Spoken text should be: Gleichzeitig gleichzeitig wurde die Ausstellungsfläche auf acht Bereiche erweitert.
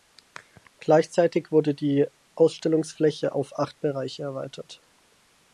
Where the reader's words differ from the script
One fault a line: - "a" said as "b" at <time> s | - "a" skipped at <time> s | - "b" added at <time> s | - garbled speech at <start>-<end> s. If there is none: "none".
- "gleichzeitig" skipped at 1.5 s